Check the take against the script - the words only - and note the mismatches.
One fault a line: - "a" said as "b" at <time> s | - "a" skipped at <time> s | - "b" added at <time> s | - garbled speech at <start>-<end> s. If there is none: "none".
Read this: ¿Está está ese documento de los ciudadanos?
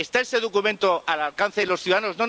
- "está" skipped at 0.2 s
- "al alcance" added at 1.1 s